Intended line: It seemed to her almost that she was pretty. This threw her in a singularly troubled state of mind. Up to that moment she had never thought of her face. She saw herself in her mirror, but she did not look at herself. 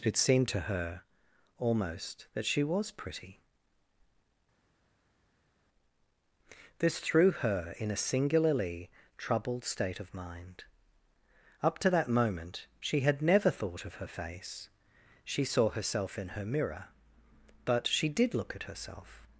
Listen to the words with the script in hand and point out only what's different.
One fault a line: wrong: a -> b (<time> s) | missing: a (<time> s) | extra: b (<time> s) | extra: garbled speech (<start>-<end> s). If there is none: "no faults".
missing: not (18.3 s)